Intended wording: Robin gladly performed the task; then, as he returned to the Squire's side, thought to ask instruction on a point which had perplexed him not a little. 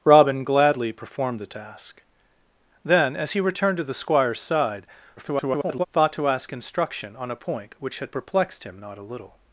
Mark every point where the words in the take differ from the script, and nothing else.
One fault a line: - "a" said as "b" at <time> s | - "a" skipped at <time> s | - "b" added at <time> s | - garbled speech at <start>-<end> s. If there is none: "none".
- garbled speech at 5.2-5.9 s